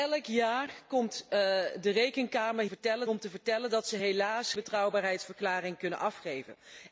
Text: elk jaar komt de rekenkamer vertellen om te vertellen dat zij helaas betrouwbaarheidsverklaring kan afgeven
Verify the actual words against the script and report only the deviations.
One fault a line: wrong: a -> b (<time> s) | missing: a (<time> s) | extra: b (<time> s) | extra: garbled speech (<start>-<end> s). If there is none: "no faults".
no faults